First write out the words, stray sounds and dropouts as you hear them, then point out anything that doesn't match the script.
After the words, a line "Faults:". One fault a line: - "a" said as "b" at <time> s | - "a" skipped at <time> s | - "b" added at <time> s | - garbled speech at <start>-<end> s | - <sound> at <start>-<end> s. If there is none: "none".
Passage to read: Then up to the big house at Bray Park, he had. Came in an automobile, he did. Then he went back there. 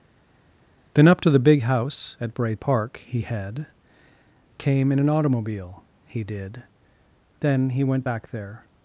Then up to the big house at Bray Park, he had. Came in an automobile, he did. Then he went back there.
Faults:
none